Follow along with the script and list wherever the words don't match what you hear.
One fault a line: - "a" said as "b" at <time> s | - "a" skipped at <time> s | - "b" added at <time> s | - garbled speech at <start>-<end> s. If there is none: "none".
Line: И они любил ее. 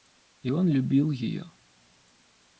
- "они" said as "он" at 0.5 s